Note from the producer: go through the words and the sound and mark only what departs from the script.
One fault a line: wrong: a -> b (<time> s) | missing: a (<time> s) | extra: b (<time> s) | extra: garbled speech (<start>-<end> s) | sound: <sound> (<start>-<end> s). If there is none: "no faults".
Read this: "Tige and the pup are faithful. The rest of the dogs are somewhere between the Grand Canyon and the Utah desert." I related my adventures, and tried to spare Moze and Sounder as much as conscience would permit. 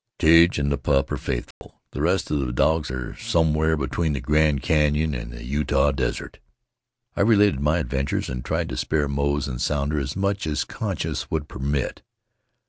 sound: dropout (1.5-1.6 s)